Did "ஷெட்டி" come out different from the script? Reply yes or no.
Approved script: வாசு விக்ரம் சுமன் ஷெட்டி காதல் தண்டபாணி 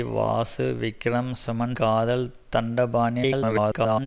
yes